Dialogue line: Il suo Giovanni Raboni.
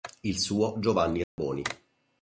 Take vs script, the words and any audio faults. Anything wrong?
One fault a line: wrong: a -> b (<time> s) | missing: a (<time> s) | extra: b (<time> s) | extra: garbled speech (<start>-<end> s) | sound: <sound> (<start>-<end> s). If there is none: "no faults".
sound: dropout (1.2-1.4 s)